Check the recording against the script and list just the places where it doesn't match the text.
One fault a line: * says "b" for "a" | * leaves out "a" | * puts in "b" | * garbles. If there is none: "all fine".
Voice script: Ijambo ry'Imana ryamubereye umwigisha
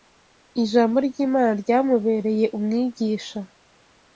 all fine